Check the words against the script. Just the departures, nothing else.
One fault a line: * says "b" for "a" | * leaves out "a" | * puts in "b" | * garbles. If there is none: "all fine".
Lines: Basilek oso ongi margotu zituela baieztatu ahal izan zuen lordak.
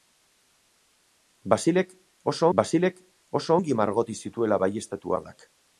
* puts in "basilek oso"
* leaves out "ahal izan zuen"